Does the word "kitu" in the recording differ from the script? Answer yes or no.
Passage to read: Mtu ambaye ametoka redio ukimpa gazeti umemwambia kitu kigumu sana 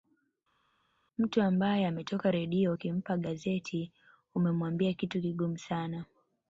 no